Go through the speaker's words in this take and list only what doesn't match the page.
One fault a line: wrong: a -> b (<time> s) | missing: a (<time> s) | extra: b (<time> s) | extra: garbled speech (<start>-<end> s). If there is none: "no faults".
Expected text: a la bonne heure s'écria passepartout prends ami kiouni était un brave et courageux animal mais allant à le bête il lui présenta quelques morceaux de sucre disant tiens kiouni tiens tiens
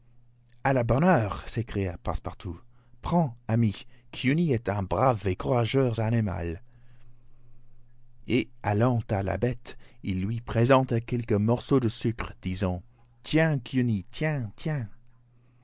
wrong: était -> est (4.5 s)
wrong: mais -> et (8.3 s)
wrong: le -> la (9.2 s)